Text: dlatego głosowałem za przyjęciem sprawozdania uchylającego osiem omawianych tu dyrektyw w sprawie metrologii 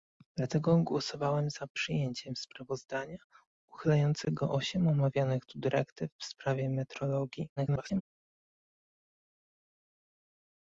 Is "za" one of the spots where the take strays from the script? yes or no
no